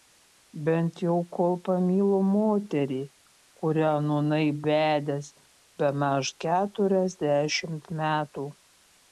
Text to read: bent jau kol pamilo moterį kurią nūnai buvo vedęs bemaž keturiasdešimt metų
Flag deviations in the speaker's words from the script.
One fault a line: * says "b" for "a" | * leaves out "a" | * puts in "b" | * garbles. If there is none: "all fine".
* leaves out "buvo"